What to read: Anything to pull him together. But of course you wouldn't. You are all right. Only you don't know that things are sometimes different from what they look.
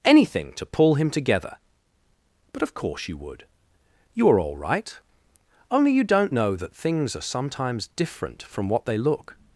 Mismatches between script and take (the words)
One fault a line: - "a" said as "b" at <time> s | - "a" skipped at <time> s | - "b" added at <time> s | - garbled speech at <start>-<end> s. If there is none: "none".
- "wouldn't" said as "would" at 3.2 s